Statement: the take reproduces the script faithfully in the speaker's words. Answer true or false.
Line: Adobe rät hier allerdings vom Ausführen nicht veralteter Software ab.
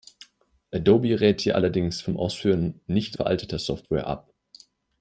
true